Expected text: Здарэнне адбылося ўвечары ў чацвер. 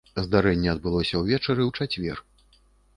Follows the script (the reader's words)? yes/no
yes